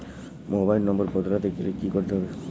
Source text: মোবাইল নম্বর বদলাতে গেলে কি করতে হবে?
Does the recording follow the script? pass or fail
pass